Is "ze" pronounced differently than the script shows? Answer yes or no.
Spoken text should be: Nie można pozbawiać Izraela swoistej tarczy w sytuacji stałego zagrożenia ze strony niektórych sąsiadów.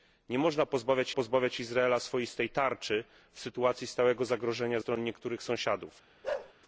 yes